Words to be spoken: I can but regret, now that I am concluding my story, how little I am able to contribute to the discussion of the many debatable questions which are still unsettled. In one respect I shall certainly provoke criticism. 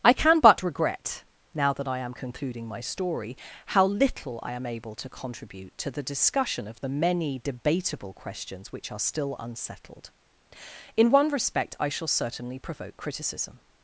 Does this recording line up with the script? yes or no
yes